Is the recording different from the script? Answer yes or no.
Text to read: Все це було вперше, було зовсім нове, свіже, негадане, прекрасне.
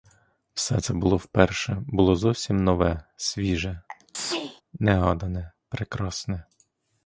no